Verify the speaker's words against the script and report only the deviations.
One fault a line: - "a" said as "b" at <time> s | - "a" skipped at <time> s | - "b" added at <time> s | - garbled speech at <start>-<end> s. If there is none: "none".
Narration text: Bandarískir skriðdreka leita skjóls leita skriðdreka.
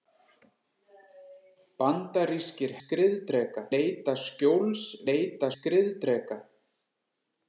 none